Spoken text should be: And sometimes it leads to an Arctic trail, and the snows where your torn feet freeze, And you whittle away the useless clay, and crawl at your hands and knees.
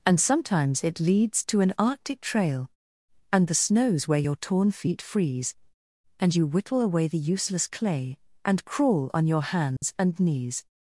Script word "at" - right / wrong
wrong